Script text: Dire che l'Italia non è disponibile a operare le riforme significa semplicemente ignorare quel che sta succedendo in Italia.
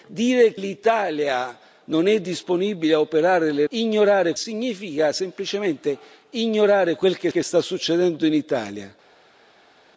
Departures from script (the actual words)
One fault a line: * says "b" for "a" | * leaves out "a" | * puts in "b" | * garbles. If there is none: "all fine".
* leaves out "che"
* says "ignorare" for "riforme"
* puts in "che"